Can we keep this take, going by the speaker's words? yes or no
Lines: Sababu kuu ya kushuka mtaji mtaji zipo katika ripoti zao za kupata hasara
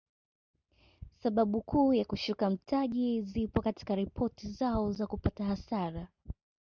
no